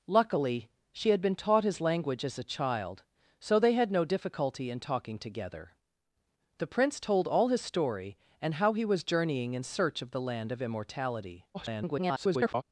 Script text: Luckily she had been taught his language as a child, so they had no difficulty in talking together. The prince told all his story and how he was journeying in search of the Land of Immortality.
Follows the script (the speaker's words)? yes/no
no